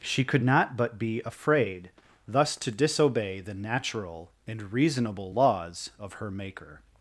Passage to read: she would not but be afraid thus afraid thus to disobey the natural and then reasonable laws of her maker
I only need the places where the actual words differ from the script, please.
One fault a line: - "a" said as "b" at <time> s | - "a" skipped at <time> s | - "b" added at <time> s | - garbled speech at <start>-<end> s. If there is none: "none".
- "would" said as "could" at 0.2 s
- "afraid thus" skipped at 2.5 s
- "then" skipped at 4.7 s